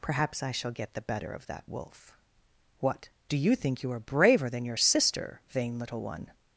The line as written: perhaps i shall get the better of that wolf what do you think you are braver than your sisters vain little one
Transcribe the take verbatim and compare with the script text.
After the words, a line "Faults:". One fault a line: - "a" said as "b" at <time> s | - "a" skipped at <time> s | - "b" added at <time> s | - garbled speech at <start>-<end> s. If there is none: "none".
perhaps i shall get the better of that wolf what do you think you are braver than your sister vain little one
Faults:
- "sisters" said as "sister" at 4.8 s